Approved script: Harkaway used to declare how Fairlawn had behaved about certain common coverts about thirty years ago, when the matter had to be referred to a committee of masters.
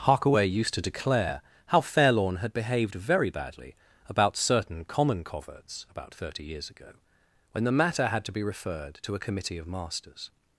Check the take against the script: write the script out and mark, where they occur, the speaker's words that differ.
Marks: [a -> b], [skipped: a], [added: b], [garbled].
Harkaway used to declare how Fairlawn had behaved [added: very badly] about certain common coverts about thirty years ago, when the matter had to be referred to a committee of masters.